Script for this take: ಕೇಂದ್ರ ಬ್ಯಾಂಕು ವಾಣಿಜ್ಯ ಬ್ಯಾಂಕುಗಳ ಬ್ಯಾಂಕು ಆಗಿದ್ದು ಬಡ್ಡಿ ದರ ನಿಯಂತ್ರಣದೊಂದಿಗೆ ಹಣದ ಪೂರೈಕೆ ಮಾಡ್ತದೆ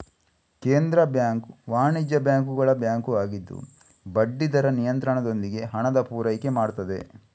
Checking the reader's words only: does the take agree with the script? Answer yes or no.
yes